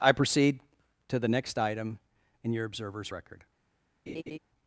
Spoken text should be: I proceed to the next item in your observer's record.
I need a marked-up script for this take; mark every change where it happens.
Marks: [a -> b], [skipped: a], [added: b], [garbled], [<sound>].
I proceed to the next item in your observer's record. [laugh]